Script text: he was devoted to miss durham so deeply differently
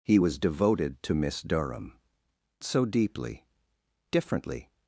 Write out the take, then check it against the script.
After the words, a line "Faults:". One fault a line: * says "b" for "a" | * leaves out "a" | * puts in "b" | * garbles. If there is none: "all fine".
he was devoted to miss durham so deeply differently
Faults:
all fine